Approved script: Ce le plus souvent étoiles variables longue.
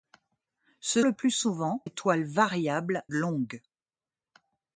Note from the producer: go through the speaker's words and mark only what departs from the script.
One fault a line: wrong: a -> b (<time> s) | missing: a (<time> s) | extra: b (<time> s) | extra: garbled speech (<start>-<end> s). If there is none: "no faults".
no faults